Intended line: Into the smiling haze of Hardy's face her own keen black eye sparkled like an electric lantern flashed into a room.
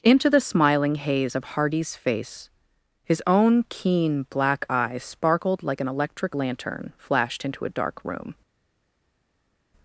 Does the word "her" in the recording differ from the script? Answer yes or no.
yes